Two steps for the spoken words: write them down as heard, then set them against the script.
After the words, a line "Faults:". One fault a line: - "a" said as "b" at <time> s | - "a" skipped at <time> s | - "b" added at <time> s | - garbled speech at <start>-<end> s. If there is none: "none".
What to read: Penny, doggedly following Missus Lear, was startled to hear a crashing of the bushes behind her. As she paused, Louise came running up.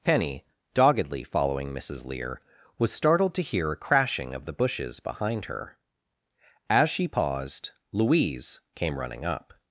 Penny, doggedly following Missus Lear, was startled to hear a crashing of the bushes behind her. As she paused, Louise came running up.
Faults:
none